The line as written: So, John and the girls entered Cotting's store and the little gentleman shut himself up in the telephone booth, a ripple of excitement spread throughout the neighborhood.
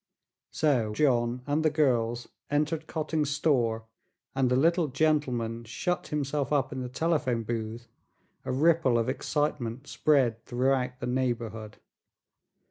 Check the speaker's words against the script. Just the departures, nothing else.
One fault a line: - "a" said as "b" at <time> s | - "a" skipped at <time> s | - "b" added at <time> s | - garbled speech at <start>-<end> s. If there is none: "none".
none